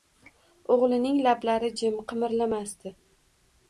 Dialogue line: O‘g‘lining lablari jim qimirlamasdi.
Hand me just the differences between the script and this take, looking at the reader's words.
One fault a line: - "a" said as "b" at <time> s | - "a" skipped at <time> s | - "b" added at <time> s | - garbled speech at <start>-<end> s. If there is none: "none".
none